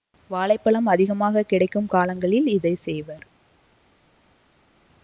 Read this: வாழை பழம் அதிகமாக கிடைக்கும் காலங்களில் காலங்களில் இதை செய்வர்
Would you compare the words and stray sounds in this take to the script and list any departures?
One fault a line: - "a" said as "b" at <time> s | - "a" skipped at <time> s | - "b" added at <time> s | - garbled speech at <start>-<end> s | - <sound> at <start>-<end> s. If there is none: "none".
- "காலங்களில்" skipped at 2.5 s